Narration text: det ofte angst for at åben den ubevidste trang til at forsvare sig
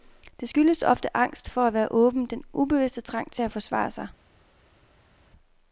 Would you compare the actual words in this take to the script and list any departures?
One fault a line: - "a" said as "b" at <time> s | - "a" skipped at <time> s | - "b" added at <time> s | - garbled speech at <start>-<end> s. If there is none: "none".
- "skyldes" added at 0.5 s
- "være" added at 1.7 s